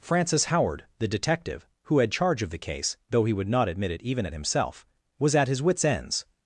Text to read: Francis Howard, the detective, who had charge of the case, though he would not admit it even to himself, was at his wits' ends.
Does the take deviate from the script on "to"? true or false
true